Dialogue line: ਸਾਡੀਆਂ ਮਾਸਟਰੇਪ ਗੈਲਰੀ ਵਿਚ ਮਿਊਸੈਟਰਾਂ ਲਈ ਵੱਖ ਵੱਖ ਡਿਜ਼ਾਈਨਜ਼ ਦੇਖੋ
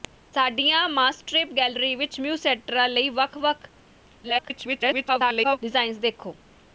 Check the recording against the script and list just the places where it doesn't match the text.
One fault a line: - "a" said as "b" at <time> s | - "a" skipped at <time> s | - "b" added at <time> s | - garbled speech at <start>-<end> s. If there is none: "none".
- garbled speech at 4.2-5.6 s